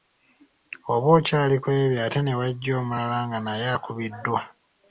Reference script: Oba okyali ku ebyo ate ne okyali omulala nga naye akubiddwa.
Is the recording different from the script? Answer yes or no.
yes